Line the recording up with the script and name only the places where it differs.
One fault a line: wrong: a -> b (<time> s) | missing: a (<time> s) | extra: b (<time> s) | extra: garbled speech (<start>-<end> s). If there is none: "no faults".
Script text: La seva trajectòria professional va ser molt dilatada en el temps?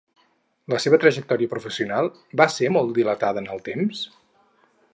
no faults